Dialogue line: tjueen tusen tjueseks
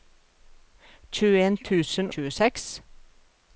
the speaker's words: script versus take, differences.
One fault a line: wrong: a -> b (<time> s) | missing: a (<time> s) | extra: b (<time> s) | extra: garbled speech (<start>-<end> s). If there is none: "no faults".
no faults